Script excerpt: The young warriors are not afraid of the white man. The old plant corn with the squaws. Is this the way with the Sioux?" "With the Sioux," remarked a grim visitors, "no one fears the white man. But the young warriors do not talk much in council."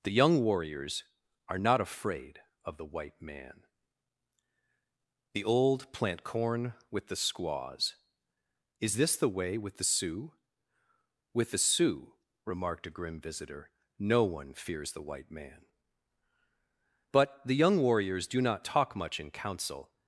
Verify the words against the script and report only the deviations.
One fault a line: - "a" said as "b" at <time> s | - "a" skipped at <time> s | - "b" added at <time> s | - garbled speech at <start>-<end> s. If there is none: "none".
- "visitors" said as "visitor" at 13.2 s